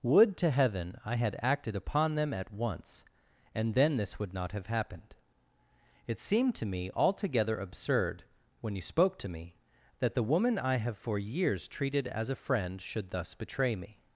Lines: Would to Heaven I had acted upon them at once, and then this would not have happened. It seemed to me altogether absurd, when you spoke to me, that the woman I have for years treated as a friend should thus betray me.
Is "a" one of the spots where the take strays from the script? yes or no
no